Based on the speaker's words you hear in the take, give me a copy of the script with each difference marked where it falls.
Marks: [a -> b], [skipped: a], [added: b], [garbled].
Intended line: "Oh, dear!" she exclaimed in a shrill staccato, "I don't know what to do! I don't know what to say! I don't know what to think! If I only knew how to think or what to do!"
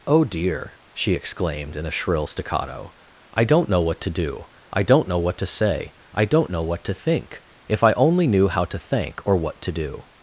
"Oh, dear!" she exclaimed in a shrill staccato, "I don't know what to do! I don't know what to say! I don't know what to think! If I only knew how to [think -> thank] or what to do!"